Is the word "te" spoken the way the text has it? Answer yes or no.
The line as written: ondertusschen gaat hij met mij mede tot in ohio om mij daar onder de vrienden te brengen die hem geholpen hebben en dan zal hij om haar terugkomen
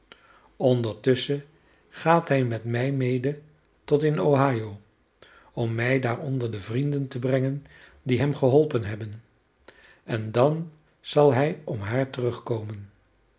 yes